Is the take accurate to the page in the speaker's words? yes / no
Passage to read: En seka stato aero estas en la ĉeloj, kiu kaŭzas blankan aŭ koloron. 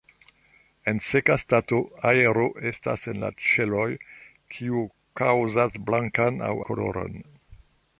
yes